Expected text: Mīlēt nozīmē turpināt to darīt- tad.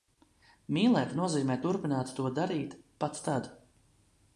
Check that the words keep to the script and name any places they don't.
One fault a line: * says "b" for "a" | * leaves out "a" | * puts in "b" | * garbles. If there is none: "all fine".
* puts in "pat"